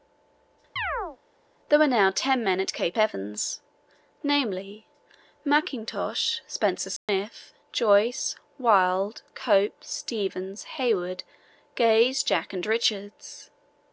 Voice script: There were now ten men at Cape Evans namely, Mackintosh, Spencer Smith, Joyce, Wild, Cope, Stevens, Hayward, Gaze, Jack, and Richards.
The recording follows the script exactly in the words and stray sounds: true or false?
false